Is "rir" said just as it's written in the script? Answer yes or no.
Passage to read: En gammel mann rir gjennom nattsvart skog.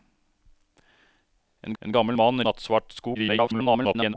no